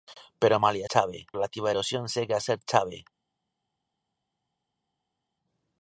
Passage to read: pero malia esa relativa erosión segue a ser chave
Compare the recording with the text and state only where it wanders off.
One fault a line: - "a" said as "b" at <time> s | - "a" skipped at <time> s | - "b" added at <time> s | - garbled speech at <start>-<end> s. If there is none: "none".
- "esa" said as "chave" at 0.9 s